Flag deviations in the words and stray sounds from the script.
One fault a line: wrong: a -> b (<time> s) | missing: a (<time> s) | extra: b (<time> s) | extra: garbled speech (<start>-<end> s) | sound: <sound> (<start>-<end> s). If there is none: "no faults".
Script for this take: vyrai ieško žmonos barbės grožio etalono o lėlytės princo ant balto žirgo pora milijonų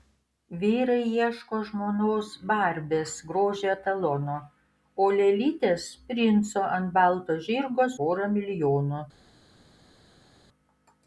no faults